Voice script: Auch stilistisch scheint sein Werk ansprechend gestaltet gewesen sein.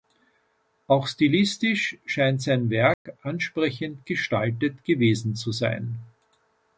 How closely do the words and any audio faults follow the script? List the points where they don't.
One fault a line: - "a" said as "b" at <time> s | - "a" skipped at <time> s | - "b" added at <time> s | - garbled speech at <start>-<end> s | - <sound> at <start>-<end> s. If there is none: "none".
- dropout at 2.9-3.1 s
- "zu" added at 5.3 s